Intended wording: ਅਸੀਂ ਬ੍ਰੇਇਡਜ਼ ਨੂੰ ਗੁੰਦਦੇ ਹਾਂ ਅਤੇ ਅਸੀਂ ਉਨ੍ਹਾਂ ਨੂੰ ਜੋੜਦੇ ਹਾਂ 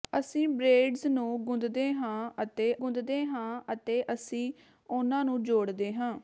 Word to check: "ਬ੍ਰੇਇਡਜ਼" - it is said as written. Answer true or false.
true